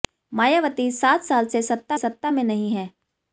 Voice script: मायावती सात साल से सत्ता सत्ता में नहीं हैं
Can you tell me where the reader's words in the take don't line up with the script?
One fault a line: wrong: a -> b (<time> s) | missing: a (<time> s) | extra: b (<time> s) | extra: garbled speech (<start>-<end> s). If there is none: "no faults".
no faults